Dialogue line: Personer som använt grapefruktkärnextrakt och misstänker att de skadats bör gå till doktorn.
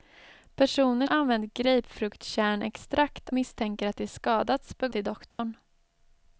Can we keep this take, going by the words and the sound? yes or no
no